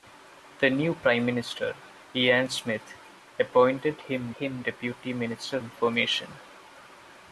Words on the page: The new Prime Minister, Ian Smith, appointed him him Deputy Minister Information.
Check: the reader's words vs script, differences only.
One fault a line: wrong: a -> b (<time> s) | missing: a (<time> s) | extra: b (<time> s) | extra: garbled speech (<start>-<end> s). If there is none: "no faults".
no faults